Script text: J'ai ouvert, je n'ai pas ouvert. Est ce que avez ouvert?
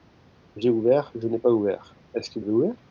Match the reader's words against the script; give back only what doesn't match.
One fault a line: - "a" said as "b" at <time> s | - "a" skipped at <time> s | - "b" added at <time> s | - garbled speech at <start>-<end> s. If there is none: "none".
none